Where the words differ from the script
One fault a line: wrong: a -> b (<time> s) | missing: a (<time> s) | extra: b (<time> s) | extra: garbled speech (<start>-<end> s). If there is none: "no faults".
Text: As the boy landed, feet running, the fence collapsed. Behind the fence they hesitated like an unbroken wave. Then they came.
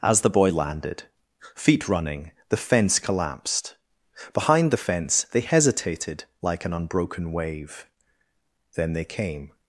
no faults